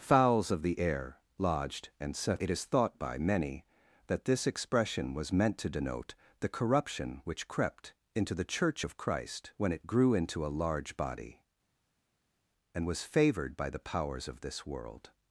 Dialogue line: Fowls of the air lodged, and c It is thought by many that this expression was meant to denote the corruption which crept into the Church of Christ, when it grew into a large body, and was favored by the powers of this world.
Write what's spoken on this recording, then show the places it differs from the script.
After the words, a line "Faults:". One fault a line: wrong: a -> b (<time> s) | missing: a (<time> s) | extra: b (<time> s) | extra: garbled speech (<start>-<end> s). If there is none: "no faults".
Fowls of the air lodged, and set It is thought by many that this expression was meant to denote the corruption which crept into the Church of Christ, when it grew into a large body, and was favored by the powers of this world.
Faults:
wrong: c -> set (2.1 s)